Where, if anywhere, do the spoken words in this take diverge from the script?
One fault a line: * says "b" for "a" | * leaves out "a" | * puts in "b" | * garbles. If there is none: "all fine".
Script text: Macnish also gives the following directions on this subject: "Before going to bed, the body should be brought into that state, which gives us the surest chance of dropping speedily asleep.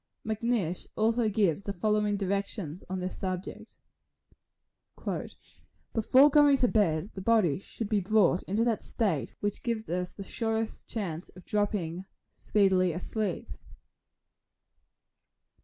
all fine